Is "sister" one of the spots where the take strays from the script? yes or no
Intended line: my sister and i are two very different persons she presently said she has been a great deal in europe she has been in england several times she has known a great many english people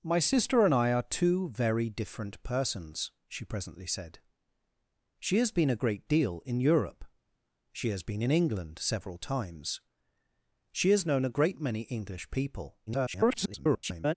no